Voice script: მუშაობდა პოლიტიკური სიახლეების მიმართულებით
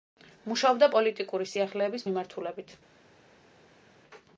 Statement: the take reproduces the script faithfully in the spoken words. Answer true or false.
true